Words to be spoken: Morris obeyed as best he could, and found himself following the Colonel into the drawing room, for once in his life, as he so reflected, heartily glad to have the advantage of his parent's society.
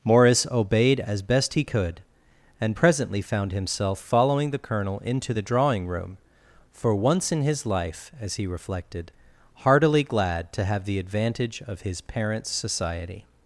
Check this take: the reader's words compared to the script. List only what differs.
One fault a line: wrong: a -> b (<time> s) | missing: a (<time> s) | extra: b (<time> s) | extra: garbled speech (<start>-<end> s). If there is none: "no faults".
extra: presently (2.7 s)
missing: so (8.5 s)